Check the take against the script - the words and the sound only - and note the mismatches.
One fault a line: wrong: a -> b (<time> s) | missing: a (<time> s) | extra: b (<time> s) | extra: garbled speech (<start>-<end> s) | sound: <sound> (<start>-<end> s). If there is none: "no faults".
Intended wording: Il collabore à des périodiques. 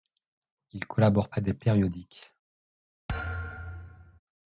sound: thud (3.1-4.2 s)